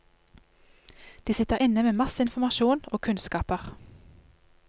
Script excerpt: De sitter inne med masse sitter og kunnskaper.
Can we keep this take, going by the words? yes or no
no